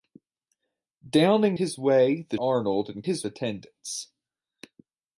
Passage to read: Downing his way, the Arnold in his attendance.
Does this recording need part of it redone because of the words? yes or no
no